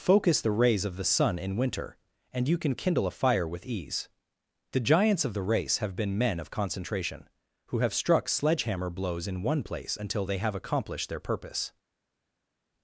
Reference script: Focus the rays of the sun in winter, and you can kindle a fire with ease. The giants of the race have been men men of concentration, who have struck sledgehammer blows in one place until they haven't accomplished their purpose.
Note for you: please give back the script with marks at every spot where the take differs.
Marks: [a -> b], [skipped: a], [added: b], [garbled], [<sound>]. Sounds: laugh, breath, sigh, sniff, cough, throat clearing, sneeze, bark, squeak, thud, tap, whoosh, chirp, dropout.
Focus the rays of the sun in winter, and you can kindle a fire with ease. The giants of the race have been men [skipped: men] of concentration, who have struck sledgehammer blows in one place until they [haven't -> have] accomplished their purpose.